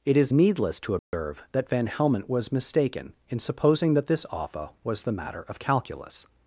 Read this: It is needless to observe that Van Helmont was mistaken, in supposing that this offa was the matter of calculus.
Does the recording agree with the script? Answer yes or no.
yes